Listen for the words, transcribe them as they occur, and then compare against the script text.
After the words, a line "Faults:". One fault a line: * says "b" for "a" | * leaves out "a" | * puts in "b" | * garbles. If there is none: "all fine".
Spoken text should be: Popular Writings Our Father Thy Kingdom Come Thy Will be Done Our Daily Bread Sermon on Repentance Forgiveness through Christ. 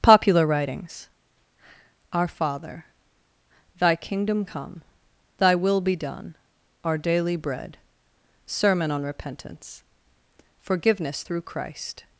Popular Writings Our Father Thy Kingdom Come Thy Will be Done Our Daily Bread Sermon on Repentance Forgiveness through Christ.
Faults:
all fine